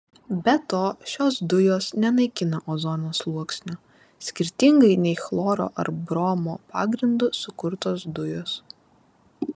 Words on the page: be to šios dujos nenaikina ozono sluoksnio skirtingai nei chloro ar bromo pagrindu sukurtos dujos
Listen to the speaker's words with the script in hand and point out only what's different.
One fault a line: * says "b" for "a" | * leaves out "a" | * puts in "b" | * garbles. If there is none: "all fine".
all fine